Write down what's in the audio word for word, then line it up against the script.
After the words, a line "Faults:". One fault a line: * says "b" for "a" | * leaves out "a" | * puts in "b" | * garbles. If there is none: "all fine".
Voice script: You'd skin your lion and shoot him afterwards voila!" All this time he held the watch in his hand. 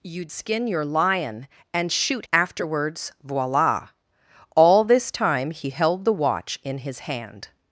You'd skin your lion and shoot afterwards voila!" All this time he held the watch in his hand.
Faults:
* leaves out "him"